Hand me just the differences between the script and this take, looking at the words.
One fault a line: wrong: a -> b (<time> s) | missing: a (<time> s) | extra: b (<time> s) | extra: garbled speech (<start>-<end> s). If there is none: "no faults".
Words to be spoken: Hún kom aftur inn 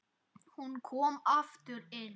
no faults